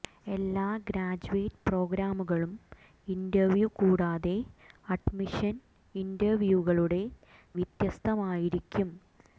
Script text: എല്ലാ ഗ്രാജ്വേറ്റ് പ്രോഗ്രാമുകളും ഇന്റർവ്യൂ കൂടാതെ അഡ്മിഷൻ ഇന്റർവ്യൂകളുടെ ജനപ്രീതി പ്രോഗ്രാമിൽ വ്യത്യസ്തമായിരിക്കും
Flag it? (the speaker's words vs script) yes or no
yes